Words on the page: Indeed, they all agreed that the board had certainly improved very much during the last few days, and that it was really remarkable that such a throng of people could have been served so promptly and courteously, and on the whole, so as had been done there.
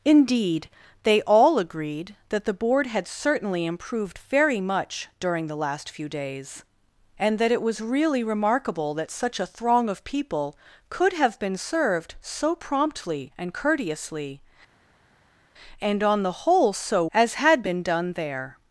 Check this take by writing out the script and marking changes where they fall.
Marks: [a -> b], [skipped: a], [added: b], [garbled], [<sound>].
Indeed, they all agreed that the board had certainly improved very much during the last few days, and that it was really remarkable that such a throng of people could have been served so promptly and courteously, and on the whole, so as had been done there.